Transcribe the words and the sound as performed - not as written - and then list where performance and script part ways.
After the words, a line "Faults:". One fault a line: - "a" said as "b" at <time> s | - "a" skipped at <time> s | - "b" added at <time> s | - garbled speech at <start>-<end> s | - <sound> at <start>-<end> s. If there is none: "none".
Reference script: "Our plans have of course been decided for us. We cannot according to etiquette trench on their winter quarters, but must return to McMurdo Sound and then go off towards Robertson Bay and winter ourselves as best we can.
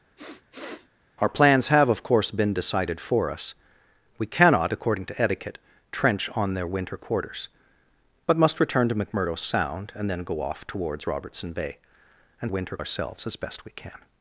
"Our plans have of course been decided for us. We cannot according to etiquette trench on their winter quarters, but must return to McMurdo Sound and then go off towards Robertson Bay and winter ourselves as best we can.
Faults:
- sniff at 0.2-0.9 s